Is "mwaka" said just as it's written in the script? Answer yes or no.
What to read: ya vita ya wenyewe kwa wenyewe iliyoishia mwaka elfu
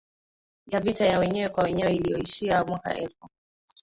yes